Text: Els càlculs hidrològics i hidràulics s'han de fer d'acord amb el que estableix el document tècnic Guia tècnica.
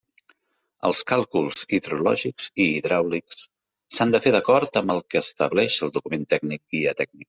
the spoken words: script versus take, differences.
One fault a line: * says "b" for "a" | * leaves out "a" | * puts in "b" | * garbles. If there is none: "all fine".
all fine